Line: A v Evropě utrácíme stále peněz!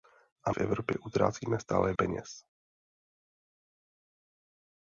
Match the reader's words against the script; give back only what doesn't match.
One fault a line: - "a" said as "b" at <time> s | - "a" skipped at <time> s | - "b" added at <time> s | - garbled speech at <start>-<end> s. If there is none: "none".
none